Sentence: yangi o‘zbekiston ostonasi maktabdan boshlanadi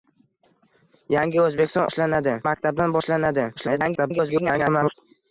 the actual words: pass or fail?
fail